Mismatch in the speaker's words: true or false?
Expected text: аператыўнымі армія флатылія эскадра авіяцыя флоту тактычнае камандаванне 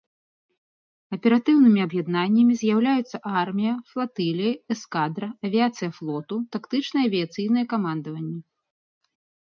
true